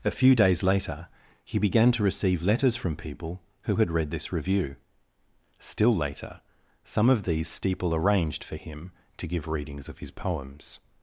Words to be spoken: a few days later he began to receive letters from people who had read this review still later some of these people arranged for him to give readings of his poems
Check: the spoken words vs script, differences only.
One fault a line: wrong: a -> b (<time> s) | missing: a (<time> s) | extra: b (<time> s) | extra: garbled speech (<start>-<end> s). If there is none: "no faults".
wrong: people -> steeple (7.5 s)